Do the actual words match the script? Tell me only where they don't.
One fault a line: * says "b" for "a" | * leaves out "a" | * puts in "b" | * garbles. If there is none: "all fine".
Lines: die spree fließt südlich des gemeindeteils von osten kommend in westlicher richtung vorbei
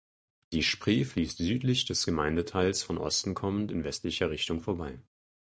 all fine